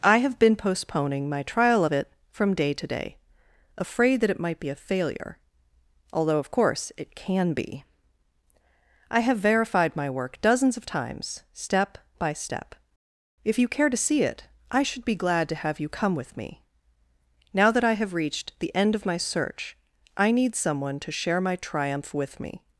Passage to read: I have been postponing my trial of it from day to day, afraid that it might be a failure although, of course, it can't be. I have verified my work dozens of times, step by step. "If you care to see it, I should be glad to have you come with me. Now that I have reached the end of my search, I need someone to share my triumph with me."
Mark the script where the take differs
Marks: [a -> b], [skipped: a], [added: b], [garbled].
I have been postponing my trial of it from day to day, afraid that it might be a failure although, of course, it [can't -> can] be. I have verified my work dozens of times, step by step. "If you care to see it, I should be glad to have you come with me. Now that I have reached the end of my search, I need someone to share my triumph with me."